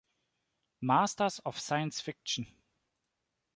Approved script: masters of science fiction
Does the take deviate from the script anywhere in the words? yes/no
no